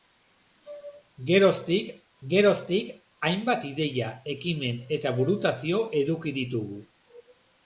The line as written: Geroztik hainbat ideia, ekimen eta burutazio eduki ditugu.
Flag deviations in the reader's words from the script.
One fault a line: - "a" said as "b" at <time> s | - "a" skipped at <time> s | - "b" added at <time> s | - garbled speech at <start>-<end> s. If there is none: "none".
- "geroztik" added at 2.3 s